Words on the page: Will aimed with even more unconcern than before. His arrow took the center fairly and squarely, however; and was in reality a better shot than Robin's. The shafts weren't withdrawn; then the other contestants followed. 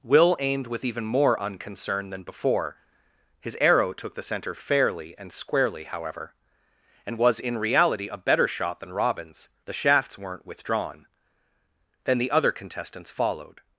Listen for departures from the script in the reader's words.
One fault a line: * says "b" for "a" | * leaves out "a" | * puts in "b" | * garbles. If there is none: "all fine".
all fine